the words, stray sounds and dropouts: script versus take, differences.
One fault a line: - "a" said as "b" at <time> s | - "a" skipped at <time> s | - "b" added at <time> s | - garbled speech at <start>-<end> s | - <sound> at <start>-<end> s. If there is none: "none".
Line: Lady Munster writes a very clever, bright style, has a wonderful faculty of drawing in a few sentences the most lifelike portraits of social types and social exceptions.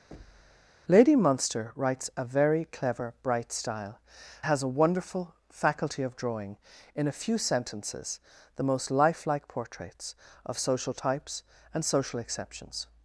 - thud at 0.1-0.8 s